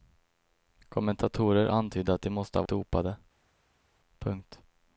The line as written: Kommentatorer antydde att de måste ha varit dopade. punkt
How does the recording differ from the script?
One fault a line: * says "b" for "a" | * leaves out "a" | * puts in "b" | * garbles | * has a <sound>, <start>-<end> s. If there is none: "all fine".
* leaves out "varit"